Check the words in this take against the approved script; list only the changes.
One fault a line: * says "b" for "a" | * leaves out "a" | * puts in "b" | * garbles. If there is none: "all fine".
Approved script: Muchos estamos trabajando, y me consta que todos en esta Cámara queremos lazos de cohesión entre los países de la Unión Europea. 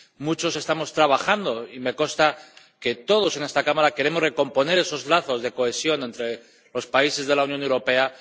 * puts in "recomponer esos"